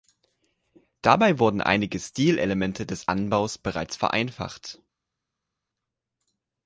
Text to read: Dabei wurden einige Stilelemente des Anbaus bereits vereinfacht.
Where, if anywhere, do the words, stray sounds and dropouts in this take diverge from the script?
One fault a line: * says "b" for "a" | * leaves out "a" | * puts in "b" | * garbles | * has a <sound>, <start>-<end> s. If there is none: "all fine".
all fine